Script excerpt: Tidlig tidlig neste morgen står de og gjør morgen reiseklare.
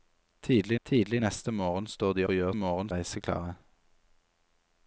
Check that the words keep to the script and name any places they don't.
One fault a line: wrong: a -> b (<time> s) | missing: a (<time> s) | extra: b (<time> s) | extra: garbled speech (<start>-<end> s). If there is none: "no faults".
no faults